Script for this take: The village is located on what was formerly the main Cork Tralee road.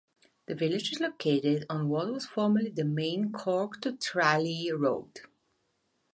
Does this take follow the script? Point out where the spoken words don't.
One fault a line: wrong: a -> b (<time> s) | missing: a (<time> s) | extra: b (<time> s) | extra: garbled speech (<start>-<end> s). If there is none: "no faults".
extra: to (3.8 s)